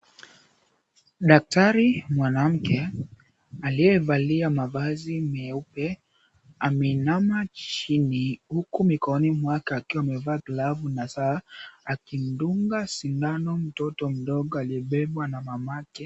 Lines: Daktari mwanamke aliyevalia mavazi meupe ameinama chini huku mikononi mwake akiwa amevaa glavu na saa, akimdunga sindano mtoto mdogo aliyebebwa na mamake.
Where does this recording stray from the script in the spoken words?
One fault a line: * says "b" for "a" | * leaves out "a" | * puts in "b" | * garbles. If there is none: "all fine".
all fine